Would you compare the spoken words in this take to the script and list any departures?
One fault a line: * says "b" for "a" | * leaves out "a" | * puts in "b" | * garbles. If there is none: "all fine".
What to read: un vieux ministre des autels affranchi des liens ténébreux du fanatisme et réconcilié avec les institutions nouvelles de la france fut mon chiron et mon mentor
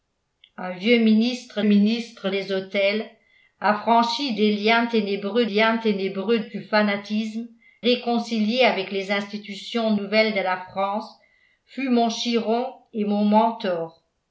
* puts in "ministre"
* puts in "liens ténébreux"
* leaves out "et"